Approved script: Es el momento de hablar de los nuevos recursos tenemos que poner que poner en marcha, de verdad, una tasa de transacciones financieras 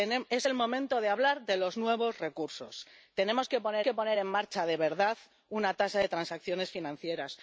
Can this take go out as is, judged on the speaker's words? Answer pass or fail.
pass